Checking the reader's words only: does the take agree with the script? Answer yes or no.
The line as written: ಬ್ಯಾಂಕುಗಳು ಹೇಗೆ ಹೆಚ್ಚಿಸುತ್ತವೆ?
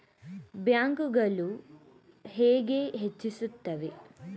yes